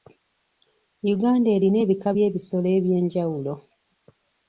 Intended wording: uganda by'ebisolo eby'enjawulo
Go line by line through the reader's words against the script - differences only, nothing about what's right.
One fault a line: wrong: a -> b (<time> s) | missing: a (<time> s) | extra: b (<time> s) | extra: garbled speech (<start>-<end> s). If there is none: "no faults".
extra: erina ebika (1.6 s)